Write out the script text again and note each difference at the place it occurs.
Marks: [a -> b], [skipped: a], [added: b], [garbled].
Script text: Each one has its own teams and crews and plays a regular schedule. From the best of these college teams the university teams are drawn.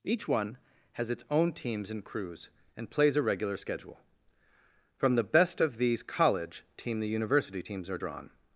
Each one has its own teams and crews and plays a regular schedule. From the best of these college [teams -> team] the university teams are drawn.